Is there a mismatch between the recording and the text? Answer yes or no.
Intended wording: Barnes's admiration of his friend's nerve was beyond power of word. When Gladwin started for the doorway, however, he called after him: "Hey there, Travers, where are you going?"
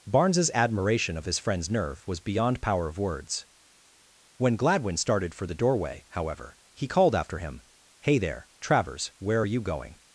yes